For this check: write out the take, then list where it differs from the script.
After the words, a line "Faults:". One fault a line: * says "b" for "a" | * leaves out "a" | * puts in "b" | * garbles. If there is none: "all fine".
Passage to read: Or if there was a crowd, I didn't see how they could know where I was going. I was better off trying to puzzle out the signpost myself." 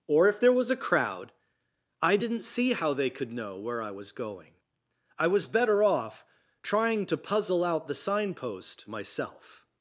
Or if there was a crowd, I didn't see how they could know where I was going. I was better off trying to puzzle out the signpost myself."
Faults:
all fine